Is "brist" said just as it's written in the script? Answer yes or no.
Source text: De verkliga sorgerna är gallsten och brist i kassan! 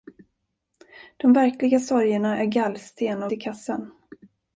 no